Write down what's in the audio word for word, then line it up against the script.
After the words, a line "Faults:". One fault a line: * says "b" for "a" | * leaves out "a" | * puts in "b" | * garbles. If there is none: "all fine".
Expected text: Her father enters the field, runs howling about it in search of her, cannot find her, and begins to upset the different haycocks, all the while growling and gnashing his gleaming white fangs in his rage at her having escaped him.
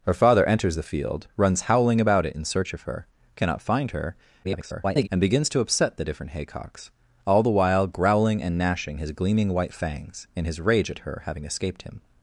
Her father enters the field, runs howling about it in search of her, cannot find her, [garbled] and begins to upset the different haycocks, all the while growling and gnashing his gleaming white fangs in his rage at her having escaped him.
Faults:
* garbles